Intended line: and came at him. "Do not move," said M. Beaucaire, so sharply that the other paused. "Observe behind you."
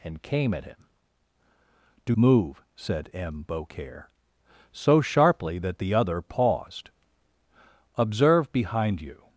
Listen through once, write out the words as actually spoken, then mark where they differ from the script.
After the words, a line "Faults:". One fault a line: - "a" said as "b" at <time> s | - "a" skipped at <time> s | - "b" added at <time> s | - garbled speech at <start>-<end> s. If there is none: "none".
and came at him. "Do move," said M. Beaucaire, so sharply that the other paused. "Observe behind you."
Faults:
- "not" skipped at 2.2 s